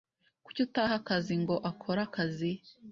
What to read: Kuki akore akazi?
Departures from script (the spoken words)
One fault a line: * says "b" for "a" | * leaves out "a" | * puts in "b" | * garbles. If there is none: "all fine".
* puts in "utaha akazi ngo"